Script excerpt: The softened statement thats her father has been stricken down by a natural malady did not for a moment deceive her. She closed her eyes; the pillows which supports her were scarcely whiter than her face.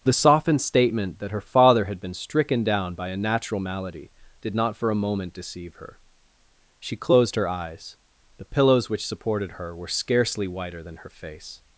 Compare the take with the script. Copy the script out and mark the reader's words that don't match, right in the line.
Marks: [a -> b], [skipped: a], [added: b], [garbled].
The softened statement [thats -> that] her father [has -> had] been stricken down by a natural malady did not for a moment deceive her. She closed her eyes; the pillows which [supports -> supported] her were scarcely whiter than her face.